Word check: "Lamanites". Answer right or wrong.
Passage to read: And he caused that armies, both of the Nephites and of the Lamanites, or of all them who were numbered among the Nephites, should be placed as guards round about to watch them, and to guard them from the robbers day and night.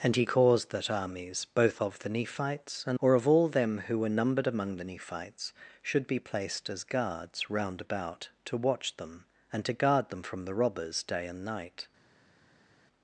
wrong